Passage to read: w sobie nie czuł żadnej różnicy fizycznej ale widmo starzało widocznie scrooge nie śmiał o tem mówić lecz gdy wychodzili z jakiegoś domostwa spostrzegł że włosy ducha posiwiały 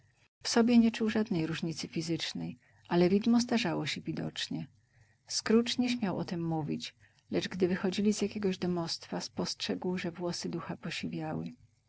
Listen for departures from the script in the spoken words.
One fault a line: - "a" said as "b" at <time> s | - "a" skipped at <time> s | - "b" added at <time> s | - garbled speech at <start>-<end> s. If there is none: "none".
- "się" added at 3.9 s